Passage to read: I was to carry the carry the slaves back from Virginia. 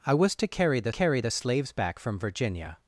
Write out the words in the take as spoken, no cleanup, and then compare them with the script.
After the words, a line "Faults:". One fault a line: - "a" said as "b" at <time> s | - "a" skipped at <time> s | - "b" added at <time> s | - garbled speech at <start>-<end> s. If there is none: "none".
I was to carry the carry the slaves back from Virginia.
Faults:
none